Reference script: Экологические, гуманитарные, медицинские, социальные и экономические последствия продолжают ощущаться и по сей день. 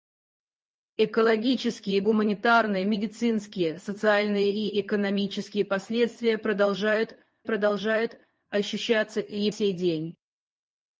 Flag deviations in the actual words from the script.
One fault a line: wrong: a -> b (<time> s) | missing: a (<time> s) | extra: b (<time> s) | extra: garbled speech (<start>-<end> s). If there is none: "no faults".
extra: продолжают (7.4 s)
missing: по (9.5 s)